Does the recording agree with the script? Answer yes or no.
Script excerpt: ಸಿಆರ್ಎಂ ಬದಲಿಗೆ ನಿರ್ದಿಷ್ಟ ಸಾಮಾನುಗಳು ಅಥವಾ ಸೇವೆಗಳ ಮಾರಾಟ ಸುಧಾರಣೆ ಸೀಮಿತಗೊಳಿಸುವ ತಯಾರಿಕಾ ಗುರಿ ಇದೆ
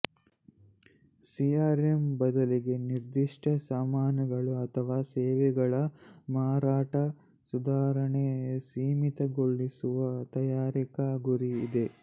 yes